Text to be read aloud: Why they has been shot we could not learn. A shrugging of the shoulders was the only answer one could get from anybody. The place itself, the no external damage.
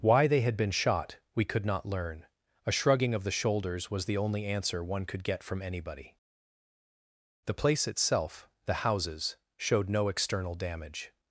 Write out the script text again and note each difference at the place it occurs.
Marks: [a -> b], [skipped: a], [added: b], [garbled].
Why they [has -> had] been shot we could not learn. A shrugging of the shoulders was the only answer one could get from anybody. The place itself, the [added: houses showed] no external damage.